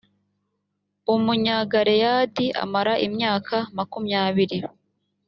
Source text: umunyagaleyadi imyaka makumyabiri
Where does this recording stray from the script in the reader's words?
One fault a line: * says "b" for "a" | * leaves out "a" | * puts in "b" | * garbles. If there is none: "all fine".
* puts in "amara"